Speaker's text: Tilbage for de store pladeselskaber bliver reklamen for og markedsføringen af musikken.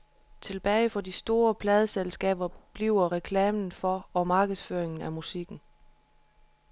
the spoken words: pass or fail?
pass